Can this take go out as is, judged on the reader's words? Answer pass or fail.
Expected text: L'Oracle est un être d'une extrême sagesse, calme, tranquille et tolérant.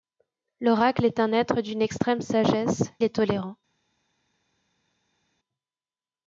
fail